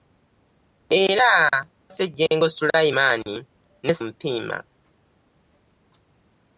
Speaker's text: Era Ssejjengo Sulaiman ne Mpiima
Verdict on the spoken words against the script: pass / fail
pass